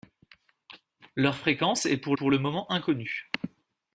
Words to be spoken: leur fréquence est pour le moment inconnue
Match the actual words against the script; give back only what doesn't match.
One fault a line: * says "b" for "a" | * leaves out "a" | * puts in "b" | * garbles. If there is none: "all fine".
* puts in "pour"